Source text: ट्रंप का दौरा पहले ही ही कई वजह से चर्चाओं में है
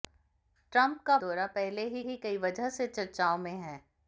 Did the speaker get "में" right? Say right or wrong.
right